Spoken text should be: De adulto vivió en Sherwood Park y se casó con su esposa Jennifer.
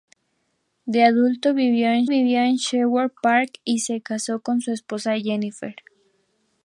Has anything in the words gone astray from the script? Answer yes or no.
yes